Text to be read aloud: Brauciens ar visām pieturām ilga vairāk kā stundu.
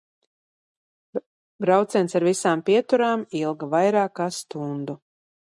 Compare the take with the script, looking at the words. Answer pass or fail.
pass